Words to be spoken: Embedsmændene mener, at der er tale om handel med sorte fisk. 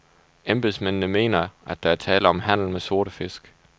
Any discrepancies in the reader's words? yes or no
no